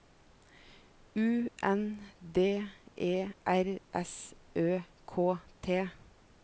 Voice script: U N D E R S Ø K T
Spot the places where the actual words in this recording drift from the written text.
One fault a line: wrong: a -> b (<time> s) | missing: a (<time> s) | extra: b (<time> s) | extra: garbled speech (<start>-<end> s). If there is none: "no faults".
no faults